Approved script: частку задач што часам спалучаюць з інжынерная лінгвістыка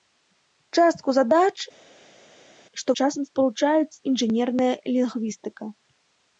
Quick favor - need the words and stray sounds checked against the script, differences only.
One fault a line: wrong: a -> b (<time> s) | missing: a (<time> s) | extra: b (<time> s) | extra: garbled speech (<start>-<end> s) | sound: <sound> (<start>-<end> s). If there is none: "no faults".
no faults